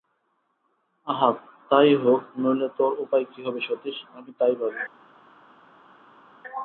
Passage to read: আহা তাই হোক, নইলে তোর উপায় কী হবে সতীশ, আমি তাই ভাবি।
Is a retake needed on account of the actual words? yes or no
no